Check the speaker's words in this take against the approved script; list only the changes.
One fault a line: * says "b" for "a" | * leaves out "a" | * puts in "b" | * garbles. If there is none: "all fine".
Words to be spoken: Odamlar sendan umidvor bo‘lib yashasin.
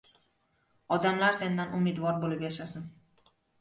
all fine